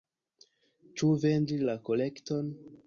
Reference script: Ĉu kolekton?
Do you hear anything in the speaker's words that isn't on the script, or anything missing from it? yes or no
yes